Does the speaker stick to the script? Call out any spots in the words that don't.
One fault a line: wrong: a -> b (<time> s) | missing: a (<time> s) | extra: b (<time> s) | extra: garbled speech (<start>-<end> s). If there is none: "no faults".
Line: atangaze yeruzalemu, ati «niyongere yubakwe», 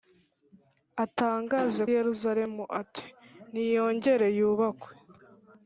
no faults